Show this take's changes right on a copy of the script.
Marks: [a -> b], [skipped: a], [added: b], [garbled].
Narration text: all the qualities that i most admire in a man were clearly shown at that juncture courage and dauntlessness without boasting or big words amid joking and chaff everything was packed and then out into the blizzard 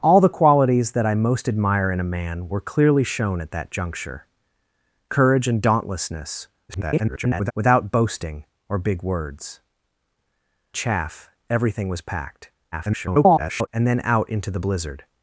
all the qualities that i most admire in a man were clearly shown at that juncture courage and dauntlessness [garbled] without boasting or big words [skipped: amid joking and] chaff everything was packed [garbled] and then out into the blizzard